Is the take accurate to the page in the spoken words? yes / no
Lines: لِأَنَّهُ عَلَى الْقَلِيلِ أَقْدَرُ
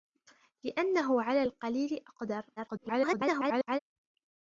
no